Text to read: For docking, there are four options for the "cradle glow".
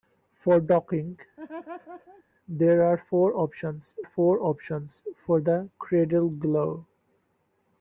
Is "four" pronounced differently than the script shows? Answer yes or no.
no